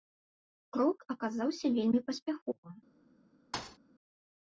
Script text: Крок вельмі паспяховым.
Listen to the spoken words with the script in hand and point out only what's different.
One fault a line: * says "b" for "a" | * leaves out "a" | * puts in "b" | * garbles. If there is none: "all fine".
* puts in "аказаўся"